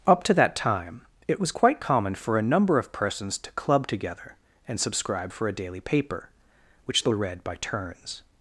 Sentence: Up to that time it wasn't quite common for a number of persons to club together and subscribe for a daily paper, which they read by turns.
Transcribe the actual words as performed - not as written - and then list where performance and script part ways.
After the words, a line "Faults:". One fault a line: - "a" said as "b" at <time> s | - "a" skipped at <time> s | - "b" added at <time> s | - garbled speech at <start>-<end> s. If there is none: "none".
Up to that time it was quite common for a number of persons to club together and subscribe for a daily paper, which they read by turns.
Faults:
- "wasn't" said as "was" at 1.4 s